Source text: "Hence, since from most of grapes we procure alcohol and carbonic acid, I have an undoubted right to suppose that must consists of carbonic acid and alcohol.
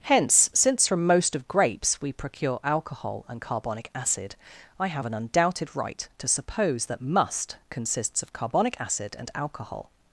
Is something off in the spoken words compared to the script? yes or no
no